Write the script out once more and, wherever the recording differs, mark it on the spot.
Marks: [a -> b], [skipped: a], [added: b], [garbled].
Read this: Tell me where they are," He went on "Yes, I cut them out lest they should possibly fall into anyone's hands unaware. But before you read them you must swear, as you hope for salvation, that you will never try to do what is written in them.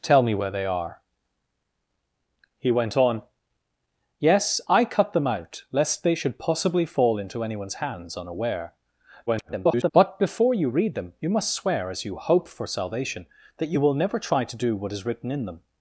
Tell me where they are," He went on "Yes, I cut them out lest they should possibly fall into anyone's hands unaware. [garbled] But before you read them you must swear, as you hope for salvation, that you will never try to do what is written in them.